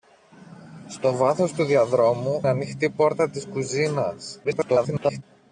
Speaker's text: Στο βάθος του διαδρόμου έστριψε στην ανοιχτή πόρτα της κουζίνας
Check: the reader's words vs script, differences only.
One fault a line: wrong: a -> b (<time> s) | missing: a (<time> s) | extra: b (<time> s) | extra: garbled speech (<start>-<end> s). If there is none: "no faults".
missing: έστριψε στην (2.5 s)
extra: garbled speech (4.4-5.2 s)